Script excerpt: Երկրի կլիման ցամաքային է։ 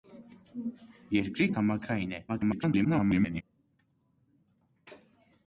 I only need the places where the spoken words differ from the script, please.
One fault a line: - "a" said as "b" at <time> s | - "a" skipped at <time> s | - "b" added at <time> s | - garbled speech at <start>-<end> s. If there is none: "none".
- "կլիման" skipped at 1.5 s
- garbled speech at 2.3-3.4 s